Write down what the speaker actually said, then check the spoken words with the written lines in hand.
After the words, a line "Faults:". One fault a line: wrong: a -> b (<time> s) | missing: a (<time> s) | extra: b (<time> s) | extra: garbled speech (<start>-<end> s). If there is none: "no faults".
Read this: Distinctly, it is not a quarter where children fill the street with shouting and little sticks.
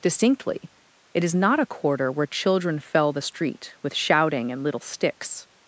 Distinctly, it is not a quarter where children fell the street with shouting and little sticks.
Faults:
wrong: fill -> fell (2.8 s)